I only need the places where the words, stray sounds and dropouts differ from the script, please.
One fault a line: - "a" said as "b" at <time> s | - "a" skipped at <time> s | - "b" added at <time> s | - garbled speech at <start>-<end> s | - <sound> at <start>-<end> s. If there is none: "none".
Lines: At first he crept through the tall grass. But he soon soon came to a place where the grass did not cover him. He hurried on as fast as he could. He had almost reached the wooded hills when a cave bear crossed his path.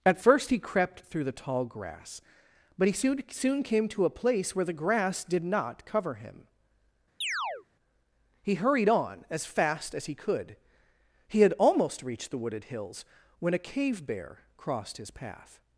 - chirp at 7.2-7.7 s